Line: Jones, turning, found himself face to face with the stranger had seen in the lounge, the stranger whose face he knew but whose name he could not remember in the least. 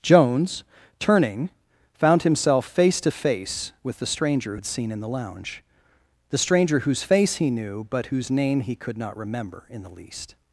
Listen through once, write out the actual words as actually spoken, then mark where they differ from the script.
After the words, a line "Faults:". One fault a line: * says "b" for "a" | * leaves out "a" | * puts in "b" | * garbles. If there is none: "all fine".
Jones, turning, found himself face to face with the stranger had seen in the lounge, the stranger whose face he knew but whose name he could not remember in the least.
Faults:
all fine